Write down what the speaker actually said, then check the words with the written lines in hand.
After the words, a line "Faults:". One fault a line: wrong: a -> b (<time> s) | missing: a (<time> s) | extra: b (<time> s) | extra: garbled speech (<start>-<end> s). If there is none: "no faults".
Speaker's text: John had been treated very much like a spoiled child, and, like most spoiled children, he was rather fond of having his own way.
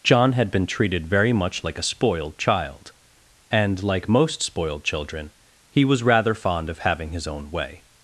John had been treated very much like a spoiled child, and, like most spoiled children, he was rather fond of having his own way.
Faults:
no faults